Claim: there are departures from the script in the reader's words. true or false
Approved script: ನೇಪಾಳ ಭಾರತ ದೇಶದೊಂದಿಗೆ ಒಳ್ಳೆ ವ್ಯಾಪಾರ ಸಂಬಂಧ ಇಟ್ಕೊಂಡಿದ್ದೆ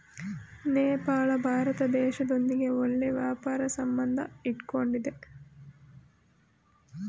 false